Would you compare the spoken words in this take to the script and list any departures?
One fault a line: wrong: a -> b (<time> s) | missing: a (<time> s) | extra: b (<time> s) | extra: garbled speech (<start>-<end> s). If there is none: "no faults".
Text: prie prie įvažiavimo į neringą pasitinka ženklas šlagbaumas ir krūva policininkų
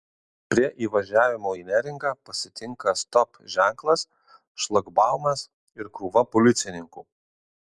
missing: prie (0.7 s)
extra: stop (3.0 s)